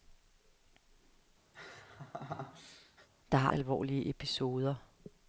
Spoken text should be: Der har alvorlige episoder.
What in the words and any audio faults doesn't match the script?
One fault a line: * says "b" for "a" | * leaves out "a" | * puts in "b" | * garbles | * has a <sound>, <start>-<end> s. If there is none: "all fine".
* has a laugh, 1.5-3.1 s